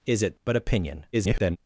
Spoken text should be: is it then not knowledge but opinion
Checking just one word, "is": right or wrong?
right